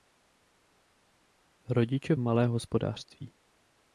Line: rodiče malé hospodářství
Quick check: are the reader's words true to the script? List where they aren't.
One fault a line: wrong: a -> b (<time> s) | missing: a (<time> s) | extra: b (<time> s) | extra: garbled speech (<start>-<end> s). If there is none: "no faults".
no faults